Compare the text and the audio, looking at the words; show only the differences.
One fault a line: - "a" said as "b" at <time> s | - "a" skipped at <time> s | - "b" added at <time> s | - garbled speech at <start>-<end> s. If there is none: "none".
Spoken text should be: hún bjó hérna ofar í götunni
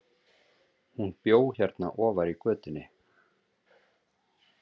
none